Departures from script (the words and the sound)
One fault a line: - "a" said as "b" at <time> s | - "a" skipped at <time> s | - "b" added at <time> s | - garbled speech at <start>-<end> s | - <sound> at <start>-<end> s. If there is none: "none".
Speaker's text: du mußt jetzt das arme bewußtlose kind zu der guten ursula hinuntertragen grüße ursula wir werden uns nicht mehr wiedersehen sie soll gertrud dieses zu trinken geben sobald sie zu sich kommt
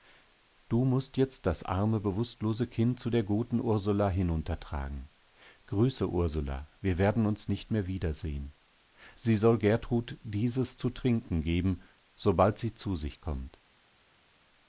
none